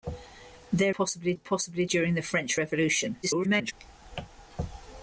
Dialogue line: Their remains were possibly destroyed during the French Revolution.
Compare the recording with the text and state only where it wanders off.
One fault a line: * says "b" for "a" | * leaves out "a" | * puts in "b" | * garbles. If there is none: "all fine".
* says "possibly" for "remains"
* leaves out "destroyed"
* garbles